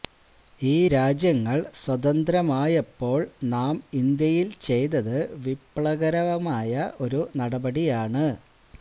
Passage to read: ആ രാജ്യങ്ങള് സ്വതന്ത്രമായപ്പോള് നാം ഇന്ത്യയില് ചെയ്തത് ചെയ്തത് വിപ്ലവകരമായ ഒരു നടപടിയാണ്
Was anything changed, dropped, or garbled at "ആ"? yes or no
yes